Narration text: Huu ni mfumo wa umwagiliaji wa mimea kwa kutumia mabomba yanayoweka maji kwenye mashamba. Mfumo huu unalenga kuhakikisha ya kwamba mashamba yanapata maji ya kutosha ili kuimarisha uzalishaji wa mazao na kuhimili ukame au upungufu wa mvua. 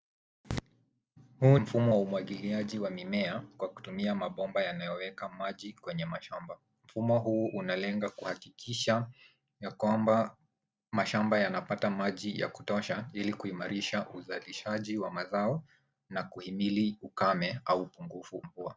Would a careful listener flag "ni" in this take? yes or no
yes